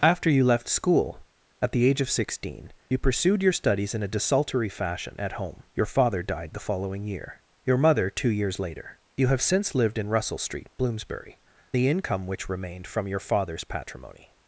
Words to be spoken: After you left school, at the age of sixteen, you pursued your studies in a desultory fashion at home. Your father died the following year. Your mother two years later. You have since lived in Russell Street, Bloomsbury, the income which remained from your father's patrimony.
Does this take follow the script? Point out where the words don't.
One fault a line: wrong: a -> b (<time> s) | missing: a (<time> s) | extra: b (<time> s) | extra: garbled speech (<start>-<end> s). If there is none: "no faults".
no faults